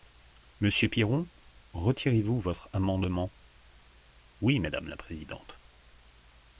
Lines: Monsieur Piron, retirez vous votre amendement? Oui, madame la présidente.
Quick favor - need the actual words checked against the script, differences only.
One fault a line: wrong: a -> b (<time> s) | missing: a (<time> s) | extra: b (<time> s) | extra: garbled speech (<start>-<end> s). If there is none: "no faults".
no faults